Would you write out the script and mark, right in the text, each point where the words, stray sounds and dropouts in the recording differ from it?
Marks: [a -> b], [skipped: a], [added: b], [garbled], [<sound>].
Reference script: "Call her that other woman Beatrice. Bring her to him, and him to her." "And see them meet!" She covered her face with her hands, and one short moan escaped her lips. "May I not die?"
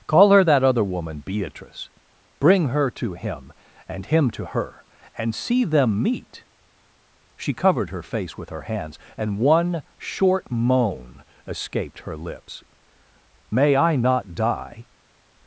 "Call her that other woman Beatrice. Bring her to him, and him to her." "And see them meet!" She covered her face with her hands, and one short moan escaped her lips. "May I not die?"